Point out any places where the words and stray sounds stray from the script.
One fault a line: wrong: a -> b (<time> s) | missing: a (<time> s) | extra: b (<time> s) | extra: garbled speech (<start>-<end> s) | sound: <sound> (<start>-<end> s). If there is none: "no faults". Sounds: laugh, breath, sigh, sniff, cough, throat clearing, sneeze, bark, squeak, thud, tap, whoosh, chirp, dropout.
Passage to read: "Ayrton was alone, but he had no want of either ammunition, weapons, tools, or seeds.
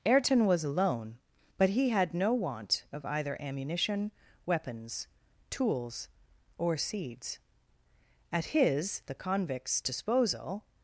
extra: At his the convict's disposal (8.3 s)